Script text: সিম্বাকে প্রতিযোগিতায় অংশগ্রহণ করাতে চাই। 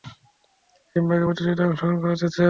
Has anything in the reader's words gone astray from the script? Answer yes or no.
no